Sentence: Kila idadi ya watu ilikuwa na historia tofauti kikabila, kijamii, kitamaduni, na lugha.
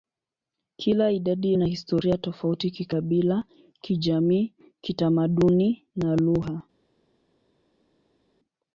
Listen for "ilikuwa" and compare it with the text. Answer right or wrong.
wrong